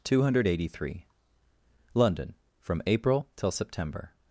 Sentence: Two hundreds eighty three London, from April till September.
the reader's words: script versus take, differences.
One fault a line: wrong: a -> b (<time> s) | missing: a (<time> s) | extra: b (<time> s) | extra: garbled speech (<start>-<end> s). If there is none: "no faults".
wrong: hundreds -> hundred (0.2 s)